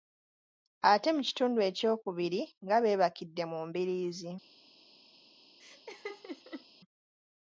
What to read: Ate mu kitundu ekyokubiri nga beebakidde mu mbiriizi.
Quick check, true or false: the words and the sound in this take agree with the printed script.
false